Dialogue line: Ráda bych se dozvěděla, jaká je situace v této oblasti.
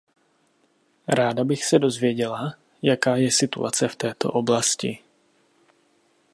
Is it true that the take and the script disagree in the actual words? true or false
false